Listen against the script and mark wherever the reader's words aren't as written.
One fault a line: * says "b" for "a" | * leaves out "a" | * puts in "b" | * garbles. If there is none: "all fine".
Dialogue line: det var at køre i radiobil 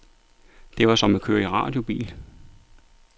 * puts in "som"